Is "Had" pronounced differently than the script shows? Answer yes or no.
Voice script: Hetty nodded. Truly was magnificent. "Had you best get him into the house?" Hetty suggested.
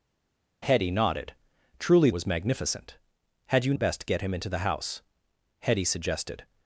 no